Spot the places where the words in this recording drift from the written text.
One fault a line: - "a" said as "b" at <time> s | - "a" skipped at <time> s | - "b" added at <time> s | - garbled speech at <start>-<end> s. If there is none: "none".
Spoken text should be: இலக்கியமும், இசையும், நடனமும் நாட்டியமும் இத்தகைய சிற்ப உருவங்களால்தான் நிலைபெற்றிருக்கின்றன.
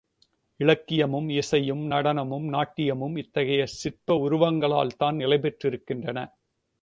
none